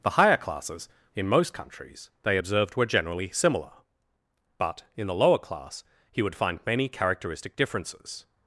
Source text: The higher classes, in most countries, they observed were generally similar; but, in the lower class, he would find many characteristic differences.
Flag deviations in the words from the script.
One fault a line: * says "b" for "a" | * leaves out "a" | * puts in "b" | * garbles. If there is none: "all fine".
all fine